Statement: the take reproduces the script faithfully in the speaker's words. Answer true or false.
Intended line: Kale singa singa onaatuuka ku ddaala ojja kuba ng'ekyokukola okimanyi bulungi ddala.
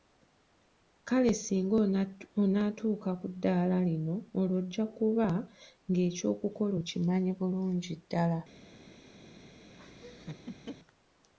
false